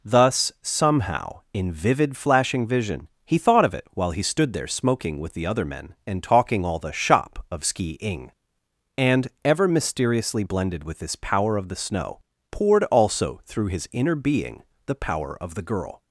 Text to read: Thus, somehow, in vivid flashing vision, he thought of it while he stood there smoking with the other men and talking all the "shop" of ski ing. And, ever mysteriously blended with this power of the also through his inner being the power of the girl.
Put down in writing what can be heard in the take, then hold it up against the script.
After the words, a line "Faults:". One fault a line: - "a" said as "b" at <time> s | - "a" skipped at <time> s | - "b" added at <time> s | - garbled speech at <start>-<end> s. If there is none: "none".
Thus, somehow, in vivid flashing vision, he thought of it while he stood there smoking with the other men and talking all the "shop" of ski ing. And, ever mysteriously blended with this power of the snow, poured also through his inner being the power of the girl.
Faults:
- "snow poured" added at 11.7 s